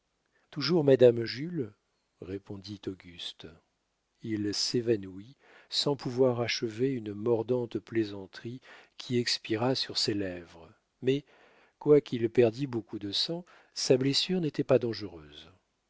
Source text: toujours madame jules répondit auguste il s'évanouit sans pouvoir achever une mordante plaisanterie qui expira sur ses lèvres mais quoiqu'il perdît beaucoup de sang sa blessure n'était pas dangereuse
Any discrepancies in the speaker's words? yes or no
no